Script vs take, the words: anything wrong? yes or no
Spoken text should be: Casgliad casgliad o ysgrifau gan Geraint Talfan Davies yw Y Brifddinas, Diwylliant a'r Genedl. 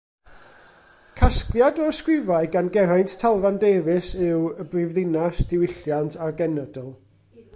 yes